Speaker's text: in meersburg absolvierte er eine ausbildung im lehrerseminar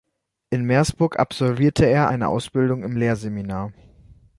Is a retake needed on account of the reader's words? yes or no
no